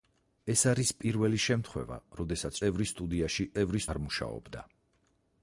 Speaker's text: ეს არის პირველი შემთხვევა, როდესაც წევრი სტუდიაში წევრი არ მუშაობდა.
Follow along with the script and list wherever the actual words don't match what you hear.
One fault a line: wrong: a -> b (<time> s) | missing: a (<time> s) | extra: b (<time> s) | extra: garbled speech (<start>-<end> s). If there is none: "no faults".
no faults